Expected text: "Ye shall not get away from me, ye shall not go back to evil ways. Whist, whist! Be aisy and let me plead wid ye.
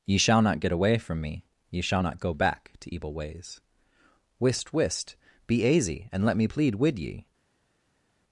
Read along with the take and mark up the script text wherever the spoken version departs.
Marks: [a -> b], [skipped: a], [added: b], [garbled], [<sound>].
"Ye shall not get away from me, ye shall not go back to evil ways. Whist, whist! Be aisy and let me plead wid ye.